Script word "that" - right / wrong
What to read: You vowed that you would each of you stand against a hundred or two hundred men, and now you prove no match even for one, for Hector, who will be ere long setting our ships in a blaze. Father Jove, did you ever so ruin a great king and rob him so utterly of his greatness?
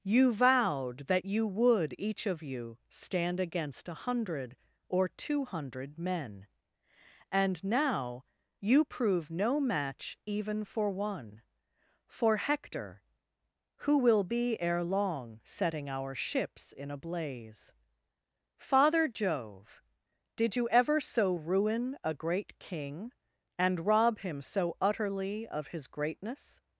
right